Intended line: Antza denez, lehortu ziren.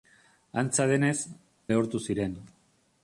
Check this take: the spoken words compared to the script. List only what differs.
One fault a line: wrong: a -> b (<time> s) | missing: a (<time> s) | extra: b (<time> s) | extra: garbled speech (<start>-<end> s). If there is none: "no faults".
no faults